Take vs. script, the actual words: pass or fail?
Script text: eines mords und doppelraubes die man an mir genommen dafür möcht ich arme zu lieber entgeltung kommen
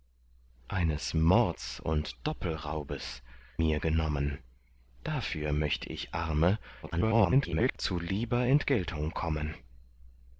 fail